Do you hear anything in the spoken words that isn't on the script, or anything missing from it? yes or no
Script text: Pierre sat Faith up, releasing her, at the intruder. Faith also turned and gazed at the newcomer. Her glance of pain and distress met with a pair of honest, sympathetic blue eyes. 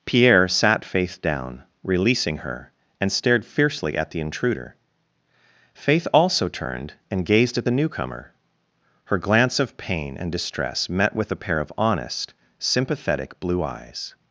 yes